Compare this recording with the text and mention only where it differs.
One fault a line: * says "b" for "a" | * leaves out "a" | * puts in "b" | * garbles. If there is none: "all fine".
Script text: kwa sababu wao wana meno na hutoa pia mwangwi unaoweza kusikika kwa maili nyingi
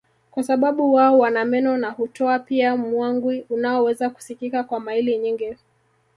all fine